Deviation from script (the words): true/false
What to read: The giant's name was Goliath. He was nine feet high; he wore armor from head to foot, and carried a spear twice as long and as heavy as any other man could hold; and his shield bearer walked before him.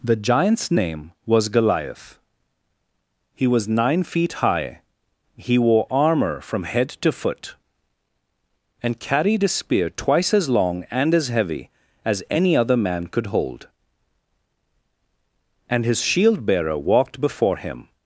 false